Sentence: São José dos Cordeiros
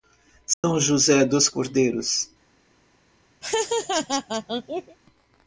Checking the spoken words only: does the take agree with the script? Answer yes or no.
yes